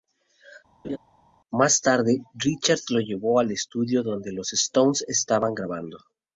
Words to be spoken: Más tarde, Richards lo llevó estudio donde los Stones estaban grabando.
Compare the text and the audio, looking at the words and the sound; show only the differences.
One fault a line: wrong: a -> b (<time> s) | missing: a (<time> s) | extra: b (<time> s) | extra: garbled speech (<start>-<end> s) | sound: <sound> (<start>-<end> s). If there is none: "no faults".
sound: laugh (0.8-1.0 s)
extra: al (3.4 s)